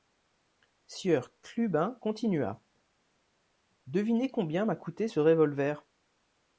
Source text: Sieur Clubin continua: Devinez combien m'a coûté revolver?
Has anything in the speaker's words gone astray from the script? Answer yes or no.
yes